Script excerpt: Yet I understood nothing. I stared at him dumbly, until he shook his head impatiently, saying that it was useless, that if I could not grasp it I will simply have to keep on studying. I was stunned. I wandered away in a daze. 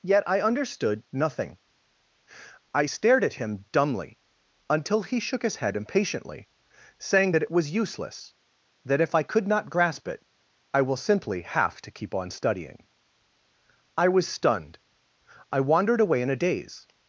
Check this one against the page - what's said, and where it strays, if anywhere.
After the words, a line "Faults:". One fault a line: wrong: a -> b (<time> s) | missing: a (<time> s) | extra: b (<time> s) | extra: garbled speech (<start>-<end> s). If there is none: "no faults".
Yet I understood nothing. I stared at him dumbly, until he shook his head impatiently, saying that it was useless, that if I could not grasp it I will simply have to keep on studying. I was stunned. I wandered away in a daze.
Faults:
no faults